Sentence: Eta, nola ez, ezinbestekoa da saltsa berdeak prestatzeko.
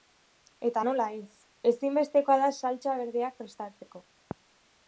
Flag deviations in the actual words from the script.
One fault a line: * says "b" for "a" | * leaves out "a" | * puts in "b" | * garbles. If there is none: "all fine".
all fine